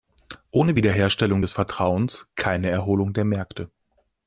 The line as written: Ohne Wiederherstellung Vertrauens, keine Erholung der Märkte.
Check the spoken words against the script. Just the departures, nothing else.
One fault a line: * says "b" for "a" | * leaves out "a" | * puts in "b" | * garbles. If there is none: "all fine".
* puts in "des"